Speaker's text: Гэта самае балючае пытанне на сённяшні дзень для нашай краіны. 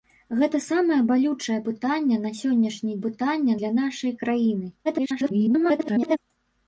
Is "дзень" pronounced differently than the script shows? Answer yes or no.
yes